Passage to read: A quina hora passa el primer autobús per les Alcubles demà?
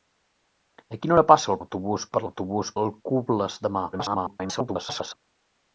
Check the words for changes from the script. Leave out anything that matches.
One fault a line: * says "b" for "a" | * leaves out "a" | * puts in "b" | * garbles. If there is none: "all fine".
* leaves out "primer"
* says "autobús" for "les"
* garbles